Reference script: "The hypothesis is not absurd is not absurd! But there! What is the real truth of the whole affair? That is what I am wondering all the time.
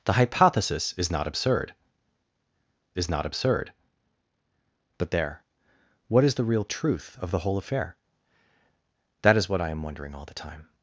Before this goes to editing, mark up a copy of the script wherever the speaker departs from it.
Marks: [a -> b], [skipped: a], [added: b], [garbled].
"The hypothesis is not absurd is not absurd! But there! What is the real truth of the whole affair? That is what I am wondering all the time.